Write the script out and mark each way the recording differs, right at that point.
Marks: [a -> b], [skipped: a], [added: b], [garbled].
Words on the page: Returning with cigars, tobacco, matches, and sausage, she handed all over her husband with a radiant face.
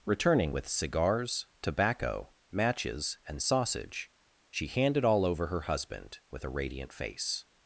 Returning with cigars, tobacco, matches, and sausage, she handed all over her husband with a radiant face.